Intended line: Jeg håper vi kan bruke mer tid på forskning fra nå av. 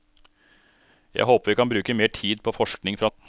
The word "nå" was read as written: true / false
false